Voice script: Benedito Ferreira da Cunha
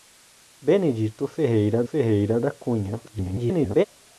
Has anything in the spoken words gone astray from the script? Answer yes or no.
yes